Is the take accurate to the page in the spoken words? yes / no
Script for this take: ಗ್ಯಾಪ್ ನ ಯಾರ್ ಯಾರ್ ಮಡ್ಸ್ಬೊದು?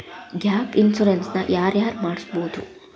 no